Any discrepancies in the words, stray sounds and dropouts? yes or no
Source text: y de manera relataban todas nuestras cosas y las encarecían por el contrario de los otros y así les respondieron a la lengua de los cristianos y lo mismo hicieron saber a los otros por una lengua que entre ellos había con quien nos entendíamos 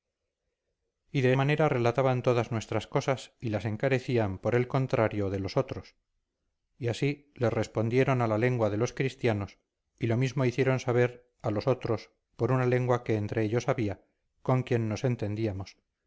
no